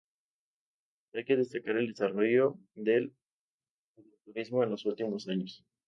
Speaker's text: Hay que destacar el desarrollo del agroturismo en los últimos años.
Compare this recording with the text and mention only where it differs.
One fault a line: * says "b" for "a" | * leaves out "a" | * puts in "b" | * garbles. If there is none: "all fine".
all fine